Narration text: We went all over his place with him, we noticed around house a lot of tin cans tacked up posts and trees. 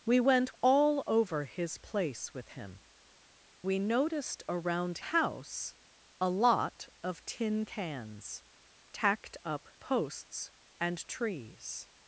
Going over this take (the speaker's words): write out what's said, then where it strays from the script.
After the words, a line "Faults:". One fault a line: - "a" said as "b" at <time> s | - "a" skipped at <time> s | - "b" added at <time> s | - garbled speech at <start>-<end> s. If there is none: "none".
We went all over his place with him, we noticed around house a lot of tin cans tacked up posts and trees.
Faults:
none